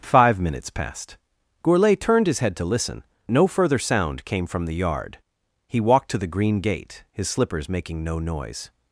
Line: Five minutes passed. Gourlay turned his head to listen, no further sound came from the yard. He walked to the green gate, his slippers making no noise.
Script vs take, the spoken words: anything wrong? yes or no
no